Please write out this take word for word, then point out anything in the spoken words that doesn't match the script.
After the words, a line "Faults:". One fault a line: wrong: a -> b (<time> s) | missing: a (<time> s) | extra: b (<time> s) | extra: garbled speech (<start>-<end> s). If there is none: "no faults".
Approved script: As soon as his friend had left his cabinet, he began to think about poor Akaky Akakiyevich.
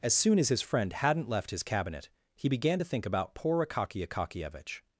As soon as his friend hadn't left his cabinet, he began to think about poor Akaky Akakiyevich.
Faults:
wrong: had -> hadn't (0.9 s)